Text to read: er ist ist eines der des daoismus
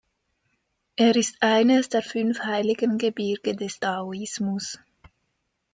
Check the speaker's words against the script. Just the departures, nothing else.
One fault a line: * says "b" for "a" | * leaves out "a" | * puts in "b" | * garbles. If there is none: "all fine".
* leaves out "ist"
* puts in "fünf heiligen gebirge"